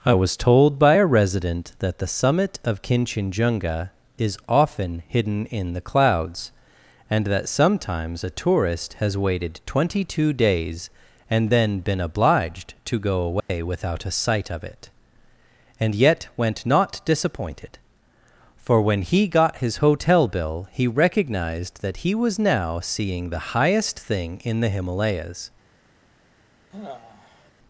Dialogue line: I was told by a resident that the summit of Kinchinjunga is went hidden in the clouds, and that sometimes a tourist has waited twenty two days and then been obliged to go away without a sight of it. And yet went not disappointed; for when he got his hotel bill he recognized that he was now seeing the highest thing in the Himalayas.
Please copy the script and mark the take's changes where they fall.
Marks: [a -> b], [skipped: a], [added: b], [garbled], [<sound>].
I was told by a resident that the summit of Kinchinjunga is [went -> often] hidden in the clouds, and that sometimes a tourist has waited twenty two days and then been obliged to go away [dropout] without a sight of it. And yet went not disappointed; for when he got his hotel bill he recognized that he was now seeing the highest thing in the Himalayas. [sigh]